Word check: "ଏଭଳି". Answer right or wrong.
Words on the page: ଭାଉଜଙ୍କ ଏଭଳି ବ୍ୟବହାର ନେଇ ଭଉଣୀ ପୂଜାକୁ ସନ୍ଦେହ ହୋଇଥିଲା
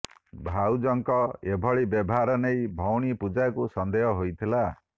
right